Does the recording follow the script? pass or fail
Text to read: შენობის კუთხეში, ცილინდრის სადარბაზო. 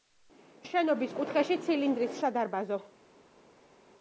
pass